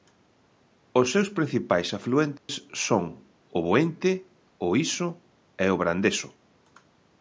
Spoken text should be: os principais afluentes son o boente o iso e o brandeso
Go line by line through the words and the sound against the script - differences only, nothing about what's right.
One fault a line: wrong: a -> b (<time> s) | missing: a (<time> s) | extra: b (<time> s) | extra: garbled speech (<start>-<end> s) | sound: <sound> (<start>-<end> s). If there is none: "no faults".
extra: seus (1.1 s)
sound: dropout (2.4-2.5 s)